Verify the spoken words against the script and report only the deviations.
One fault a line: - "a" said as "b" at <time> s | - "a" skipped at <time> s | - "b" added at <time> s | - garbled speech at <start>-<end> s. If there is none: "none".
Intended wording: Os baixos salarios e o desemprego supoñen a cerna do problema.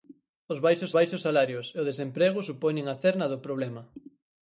- "baixos" added at 1.0 s